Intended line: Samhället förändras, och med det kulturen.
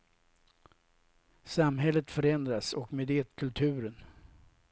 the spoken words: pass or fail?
pass